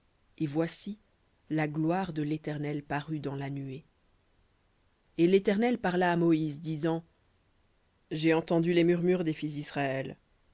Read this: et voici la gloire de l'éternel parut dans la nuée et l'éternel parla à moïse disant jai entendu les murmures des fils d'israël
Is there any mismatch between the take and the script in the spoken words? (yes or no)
no